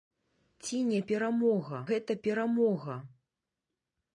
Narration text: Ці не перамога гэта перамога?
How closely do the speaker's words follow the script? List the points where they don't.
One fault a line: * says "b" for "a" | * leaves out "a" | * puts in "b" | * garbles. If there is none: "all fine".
all fine